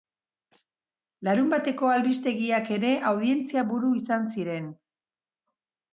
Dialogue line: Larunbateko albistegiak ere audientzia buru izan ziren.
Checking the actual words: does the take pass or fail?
pass